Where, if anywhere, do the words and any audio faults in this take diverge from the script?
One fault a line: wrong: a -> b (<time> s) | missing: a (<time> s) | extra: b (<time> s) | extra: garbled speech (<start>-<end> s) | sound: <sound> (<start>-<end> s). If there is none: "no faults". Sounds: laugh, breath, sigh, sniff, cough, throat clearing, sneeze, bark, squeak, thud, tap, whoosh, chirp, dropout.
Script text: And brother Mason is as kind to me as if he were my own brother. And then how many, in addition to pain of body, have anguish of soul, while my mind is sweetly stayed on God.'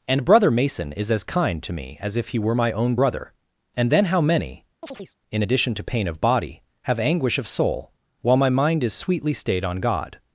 sound: chirp (4.8-5.2 s)